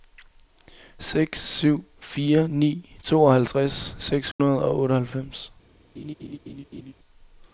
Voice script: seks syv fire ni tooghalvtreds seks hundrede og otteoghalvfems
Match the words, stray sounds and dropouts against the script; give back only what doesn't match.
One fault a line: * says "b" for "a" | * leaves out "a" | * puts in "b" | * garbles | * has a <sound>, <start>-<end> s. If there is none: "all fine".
* has a dropout, 4.3-4.4 s
* has a laugh, 6.0-6.9 s